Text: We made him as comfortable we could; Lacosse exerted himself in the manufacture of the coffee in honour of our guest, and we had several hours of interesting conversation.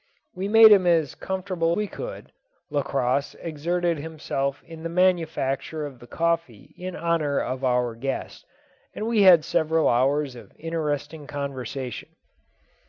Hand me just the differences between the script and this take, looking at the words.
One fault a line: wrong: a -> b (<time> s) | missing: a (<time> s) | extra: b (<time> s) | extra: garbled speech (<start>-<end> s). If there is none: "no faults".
no faults